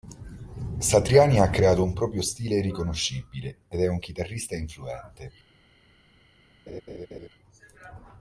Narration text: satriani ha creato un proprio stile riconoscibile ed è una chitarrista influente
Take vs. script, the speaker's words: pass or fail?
fail